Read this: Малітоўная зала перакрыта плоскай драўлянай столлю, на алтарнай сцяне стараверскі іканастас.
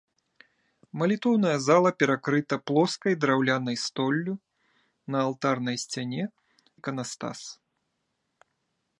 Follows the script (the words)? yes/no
no